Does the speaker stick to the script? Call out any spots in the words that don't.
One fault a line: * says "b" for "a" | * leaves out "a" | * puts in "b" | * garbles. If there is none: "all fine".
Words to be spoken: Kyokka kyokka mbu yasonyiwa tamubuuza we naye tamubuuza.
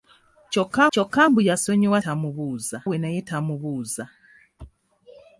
all fine